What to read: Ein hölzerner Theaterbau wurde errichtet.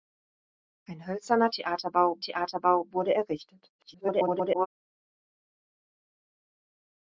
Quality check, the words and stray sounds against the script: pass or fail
fail